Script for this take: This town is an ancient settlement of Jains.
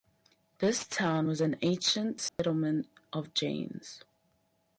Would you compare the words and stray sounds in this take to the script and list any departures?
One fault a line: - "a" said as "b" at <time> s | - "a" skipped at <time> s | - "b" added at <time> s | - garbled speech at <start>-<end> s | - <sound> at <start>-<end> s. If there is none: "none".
- "is" said as "was" at 1.3 s
- dropout at 2.3-2.4 s